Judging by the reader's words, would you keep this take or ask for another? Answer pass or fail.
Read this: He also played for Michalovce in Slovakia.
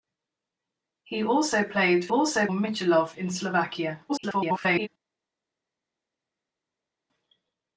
fail